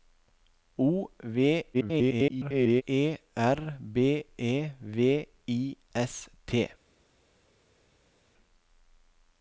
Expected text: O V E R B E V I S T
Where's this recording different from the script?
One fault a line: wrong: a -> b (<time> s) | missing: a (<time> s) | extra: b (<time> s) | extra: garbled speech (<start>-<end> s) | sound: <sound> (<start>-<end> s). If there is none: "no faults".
extra: garbled speech (1.7-2.8 s)